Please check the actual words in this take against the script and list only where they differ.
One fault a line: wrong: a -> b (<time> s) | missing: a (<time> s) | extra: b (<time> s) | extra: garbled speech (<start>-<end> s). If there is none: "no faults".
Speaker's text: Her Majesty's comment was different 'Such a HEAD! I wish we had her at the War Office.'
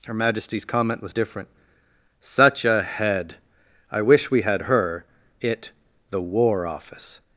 wrong: at -> it (5.4 s)